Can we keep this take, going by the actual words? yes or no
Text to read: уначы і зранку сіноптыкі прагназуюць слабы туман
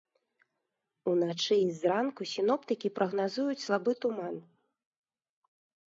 yes